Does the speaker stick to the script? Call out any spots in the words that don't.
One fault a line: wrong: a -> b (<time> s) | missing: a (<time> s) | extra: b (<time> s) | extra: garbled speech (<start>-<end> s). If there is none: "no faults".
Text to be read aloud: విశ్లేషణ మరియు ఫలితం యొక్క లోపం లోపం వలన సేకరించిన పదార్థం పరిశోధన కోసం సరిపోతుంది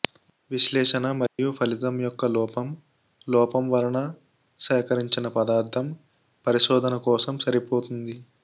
no faults